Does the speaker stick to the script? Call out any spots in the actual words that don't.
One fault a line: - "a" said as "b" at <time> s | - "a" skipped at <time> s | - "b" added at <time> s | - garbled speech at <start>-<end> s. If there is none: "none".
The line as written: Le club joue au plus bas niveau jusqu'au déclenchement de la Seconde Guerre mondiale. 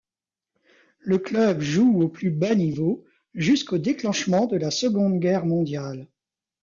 none